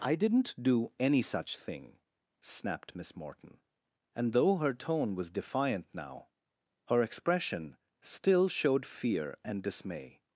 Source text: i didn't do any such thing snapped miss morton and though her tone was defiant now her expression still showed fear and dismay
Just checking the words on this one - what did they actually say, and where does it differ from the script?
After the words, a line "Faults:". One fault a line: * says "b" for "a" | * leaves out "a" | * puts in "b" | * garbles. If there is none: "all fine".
i didn't do any such thing snapped miss morton and though her tone was defiant now her expression still showed fear and dismay
Faults:
all fine